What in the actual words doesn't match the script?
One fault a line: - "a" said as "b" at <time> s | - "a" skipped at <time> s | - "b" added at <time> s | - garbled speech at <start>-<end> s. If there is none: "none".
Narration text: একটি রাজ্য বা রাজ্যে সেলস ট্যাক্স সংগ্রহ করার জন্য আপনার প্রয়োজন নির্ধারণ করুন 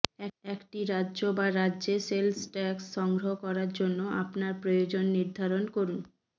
none